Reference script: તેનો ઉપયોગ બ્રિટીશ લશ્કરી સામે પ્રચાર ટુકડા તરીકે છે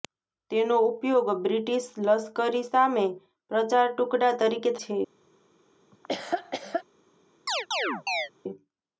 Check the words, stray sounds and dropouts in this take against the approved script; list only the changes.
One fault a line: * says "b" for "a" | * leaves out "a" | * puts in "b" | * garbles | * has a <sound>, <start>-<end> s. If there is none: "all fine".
* has a laugh, 5.9-6.8 s
* has a chirp, 7.5-8.3 s